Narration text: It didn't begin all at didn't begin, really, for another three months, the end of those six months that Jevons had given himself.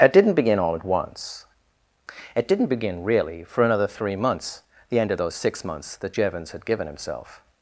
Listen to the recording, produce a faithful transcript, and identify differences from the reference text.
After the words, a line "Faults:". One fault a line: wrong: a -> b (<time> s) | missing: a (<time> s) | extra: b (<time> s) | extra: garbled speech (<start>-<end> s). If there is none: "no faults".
It didn't begin all at once. It didn't begin, really, for another three months, the end of those six months that Jevons had given himself.
Faults:
extra: once It (0.8 s)